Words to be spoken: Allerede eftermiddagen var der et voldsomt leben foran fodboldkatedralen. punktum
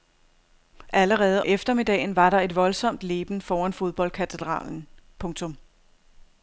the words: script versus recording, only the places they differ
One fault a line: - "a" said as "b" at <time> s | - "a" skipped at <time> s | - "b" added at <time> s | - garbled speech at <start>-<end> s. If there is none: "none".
none